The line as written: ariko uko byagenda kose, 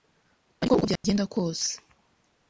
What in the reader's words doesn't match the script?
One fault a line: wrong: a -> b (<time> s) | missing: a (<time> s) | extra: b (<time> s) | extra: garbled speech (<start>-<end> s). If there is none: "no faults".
no faults